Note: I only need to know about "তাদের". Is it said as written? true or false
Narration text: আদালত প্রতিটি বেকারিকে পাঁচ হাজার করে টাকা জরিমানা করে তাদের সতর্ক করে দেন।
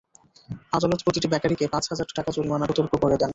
false